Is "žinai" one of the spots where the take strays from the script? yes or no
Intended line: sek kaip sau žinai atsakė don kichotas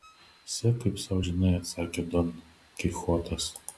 no